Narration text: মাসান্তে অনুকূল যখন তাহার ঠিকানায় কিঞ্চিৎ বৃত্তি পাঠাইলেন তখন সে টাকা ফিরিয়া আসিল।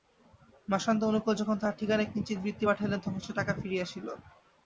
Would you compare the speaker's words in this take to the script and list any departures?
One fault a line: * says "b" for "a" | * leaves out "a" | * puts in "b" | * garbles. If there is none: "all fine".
all fine